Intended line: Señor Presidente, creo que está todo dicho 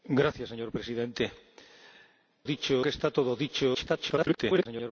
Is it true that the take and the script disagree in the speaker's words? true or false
true